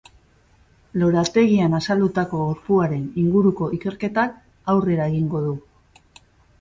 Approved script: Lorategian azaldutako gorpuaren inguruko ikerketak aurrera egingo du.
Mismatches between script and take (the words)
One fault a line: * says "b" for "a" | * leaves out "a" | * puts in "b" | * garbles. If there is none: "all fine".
all fine